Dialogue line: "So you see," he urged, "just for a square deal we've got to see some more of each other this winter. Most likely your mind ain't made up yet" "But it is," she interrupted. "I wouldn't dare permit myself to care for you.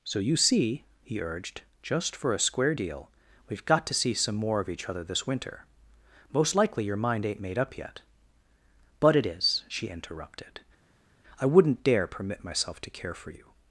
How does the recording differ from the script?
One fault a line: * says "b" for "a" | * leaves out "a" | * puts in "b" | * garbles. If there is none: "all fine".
all fine